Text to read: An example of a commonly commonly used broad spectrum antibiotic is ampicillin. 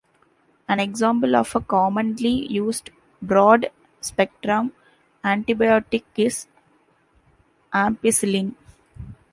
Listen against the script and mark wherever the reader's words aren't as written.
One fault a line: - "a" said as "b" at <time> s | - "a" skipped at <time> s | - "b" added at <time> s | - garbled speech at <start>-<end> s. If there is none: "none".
- "commonly" skipped at 2.5 s